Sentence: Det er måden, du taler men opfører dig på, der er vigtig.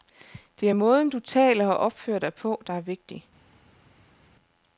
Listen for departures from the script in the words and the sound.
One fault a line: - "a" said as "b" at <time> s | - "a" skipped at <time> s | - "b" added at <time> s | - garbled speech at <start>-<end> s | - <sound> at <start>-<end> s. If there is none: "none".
- "men" said as "og" at 1.7 s